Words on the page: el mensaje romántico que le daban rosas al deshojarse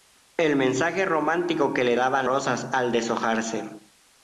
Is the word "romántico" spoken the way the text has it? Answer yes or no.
yes